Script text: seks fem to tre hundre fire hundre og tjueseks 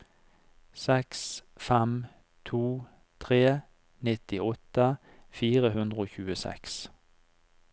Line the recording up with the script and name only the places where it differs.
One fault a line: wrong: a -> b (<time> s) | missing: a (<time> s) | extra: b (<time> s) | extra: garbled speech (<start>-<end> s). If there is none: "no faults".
wrong: hundre -> nittiåtte (4.1 s)